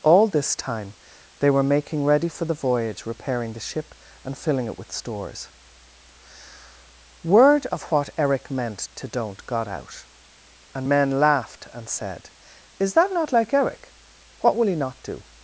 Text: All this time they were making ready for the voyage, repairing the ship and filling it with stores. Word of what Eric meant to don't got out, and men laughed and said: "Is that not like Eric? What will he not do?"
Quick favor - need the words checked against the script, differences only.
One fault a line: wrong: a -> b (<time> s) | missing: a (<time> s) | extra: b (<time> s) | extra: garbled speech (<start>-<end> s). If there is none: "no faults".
no faults